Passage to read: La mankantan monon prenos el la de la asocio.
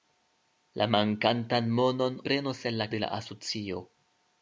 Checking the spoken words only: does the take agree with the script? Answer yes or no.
yes